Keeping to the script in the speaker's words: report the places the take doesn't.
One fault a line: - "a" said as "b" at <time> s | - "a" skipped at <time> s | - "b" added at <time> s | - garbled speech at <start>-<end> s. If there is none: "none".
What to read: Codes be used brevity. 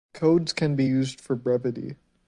- "can" added at 0.5 s
- "for" added at 1.2 s